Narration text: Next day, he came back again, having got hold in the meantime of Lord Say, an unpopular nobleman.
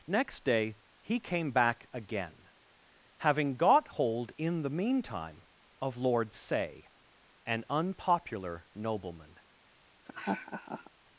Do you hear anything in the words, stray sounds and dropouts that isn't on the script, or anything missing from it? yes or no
yes